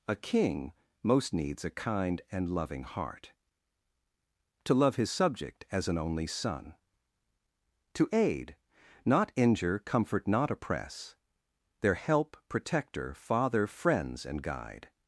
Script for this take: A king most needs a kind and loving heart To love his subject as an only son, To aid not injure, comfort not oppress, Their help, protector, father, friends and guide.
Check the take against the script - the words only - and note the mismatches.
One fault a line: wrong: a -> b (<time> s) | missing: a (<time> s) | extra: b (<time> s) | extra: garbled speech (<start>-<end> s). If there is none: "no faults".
no faults